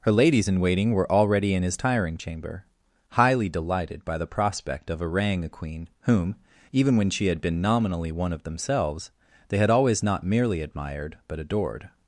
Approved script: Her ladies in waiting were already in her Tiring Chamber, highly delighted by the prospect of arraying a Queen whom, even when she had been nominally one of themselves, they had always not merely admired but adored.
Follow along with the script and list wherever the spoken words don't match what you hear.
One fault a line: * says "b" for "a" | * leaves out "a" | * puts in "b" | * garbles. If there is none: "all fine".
* says "his" for "her"